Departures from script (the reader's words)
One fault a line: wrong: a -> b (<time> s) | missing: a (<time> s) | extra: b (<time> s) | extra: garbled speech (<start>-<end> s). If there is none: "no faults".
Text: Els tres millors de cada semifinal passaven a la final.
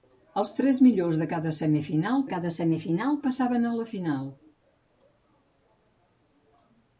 extra: cada semifinal (2.3 s)